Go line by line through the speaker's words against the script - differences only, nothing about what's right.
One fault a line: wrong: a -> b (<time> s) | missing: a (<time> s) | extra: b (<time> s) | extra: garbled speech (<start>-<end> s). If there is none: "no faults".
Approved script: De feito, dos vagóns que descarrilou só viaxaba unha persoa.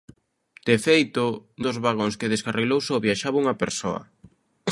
no faults